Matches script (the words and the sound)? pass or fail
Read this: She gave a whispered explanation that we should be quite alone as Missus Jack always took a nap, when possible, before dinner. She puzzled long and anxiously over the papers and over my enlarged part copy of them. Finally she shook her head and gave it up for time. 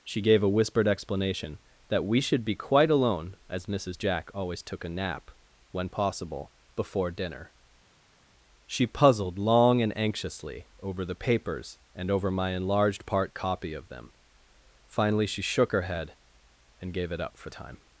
pass